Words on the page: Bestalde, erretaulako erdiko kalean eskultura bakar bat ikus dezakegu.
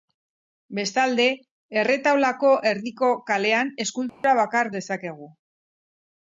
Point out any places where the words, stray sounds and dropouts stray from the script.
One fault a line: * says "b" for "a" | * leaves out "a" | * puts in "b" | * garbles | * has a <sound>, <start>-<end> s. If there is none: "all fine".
* has a dropout, 4.1-4.2 s
* leaves out "bat ikus"